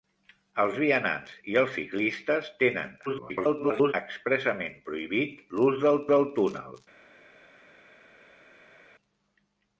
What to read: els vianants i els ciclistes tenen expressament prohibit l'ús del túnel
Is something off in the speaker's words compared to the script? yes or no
yes